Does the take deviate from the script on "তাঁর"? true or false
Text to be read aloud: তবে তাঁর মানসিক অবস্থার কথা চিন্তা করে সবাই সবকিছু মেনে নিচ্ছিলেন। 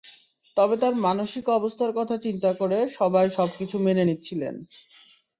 false